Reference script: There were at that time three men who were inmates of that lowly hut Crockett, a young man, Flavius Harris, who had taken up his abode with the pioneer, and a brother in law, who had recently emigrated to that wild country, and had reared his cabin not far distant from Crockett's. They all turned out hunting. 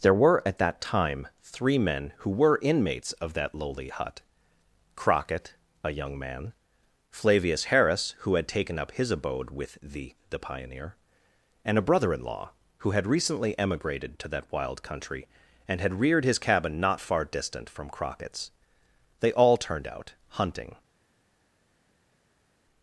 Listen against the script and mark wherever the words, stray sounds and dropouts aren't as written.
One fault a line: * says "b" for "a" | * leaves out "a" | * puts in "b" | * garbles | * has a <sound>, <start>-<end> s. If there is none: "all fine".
* puts in "the"